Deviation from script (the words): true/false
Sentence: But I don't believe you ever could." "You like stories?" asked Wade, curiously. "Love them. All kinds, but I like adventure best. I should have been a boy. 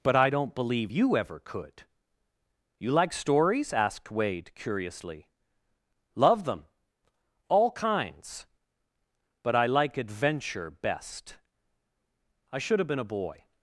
false